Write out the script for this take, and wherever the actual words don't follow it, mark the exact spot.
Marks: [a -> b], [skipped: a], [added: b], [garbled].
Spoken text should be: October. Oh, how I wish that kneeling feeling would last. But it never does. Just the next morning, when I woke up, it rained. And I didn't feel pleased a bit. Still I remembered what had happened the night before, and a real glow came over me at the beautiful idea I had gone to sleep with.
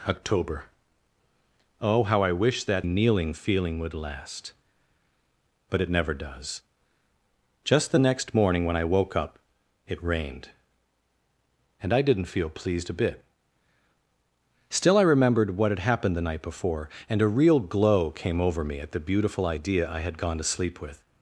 October. Oh, how I wish that kneeling feeling would last. But it never does. Just the next morning, when I woke up, it rained. And I didn't feel pleased a bit. Still I remembered what had happened the night before, and a real glow came over me at the beautiful idea I had gone to sleep with.